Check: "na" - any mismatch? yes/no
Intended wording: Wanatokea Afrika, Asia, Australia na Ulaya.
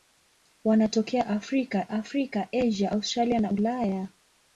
no